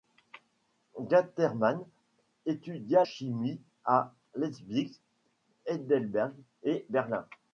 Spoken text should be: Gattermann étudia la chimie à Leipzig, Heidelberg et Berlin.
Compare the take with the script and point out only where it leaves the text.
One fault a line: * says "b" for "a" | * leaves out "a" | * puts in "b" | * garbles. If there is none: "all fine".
* leaves out "la"